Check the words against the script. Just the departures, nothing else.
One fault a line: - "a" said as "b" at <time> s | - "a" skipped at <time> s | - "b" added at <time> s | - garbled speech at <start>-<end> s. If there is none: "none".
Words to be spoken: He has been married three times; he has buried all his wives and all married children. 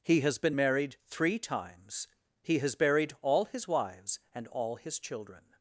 - "married" said as "his" at 4.8 s